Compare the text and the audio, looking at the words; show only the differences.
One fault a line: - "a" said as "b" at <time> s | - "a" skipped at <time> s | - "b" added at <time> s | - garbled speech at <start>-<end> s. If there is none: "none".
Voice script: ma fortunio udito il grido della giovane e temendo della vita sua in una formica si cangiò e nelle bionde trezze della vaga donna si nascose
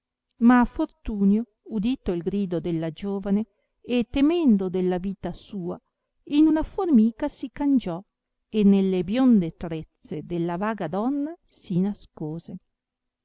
none